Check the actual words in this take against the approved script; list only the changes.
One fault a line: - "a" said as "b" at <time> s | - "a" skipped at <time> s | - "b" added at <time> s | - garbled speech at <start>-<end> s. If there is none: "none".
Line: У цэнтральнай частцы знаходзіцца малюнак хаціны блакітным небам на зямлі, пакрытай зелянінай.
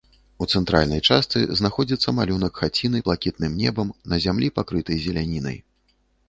none